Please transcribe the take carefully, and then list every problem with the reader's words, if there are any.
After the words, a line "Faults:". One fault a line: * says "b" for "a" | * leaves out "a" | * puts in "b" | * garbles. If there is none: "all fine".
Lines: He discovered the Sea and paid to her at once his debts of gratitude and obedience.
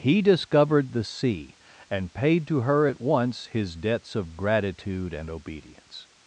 He discovered the Sea and paid to her at once his debts of gratitude and obedience.
Faults:
all fine